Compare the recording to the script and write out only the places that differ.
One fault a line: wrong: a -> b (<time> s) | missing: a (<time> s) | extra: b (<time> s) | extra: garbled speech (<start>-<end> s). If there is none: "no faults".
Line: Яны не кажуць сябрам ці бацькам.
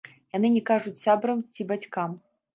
no faults